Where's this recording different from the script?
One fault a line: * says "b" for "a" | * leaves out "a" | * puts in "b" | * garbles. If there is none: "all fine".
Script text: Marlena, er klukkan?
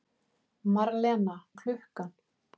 all fine